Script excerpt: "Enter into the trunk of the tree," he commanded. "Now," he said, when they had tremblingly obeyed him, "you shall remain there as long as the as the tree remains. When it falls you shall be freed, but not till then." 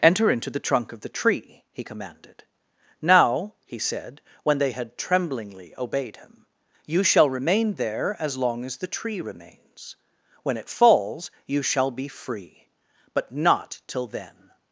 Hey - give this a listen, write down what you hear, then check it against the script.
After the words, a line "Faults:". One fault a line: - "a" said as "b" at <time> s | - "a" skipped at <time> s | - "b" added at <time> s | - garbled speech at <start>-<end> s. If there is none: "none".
"Enter into the trunk of the tree," he commanded. "Now," he said, when they had tremblingly obeyed him, "you shall remain there as long as the tree remains. When it falls you shall be free, but not till then."
Faults:
- "as the" skipped at 8.9 s
- "freed" said as "free" at 12.1 s